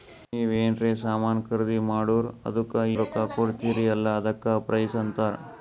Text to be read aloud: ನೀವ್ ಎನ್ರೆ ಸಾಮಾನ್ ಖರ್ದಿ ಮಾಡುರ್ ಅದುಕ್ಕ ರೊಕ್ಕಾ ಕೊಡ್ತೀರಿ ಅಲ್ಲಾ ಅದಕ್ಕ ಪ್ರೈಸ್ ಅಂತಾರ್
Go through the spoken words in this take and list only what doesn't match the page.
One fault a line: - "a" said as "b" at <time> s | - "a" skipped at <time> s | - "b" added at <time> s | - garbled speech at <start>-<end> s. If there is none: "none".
none